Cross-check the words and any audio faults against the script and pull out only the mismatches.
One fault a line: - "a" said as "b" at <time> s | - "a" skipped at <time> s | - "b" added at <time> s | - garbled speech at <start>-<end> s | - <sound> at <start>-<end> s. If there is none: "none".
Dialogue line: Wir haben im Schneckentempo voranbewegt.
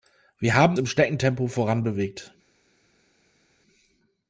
none